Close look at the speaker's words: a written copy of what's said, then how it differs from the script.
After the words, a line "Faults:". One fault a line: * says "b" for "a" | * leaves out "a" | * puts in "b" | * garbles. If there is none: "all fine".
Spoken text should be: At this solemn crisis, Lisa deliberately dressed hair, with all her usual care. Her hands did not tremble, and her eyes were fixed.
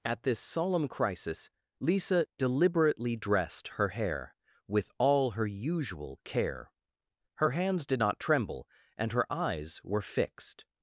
At this solemn crisis, Lisa deliberately dressed her hair, with all her usual care. Her hands did not tremble, and her eyes were fixed.
Faults:
* puts in "her"